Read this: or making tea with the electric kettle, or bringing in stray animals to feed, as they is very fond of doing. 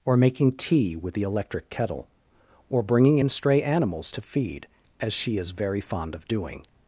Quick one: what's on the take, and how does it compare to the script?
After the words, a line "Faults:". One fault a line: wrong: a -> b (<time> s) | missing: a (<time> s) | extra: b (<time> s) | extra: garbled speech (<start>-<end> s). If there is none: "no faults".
or making tea with the electric kettle, or bringing in stray animals to feed, as she is very fond of doing.
Faults:
wrong: they -> she (5.1 s)